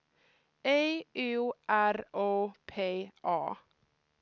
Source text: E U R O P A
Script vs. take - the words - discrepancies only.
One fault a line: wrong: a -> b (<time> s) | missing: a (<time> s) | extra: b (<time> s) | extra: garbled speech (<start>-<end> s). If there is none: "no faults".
no faults